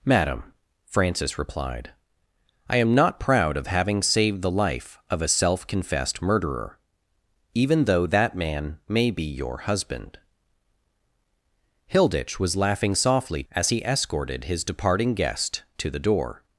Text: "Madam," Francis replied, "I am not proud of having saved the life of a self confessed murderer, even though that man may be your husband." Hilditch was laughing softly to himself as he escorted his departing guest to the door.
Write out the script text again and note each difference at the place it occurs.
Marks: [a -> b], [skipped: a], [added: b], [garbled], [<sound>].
"Madam," Francis replied, "I am not proud of having saved the life of a self confessed murderer, even though that man may be your husband." Hilditch was laughing softly [skipped: to himself] as he escorted his departing guest to the door.